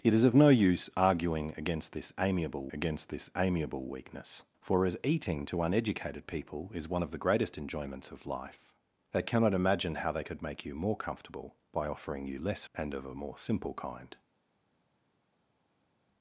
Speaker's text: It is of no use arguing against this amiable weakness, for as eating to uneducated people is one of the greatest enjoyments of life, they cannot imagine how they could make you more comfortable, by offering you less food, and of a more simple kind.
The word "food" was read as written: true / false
false